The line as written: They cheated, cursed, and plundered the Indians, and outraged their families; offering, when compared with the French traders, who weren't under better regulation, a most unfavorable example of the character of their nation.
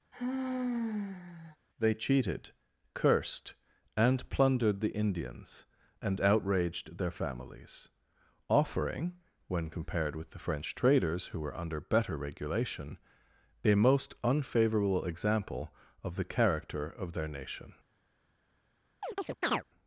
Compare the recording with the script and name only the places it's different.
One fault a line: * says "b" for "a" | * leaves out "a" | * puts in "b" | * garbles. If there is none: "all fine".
* says "were" for "weren't"